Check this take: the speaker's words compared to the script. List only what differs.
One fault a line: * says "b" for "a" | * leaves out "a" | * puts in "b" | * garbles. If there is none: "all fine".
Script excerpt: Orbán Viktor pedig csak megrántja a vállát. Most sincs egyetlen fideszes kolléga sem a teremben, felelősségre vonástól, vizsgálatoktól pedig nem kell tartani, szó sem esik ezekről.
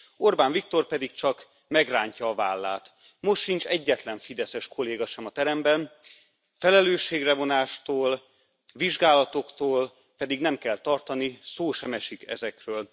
all fine